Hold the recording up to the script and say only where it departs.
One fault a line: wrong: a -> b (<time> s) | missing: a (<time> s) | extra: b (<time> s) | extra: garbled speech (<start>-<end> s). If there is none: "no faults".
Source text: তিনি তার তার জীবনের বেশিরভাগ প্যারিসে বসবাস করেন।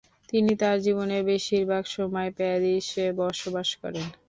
missing: তার (0.8 s)
extra: সময় (1.9 s)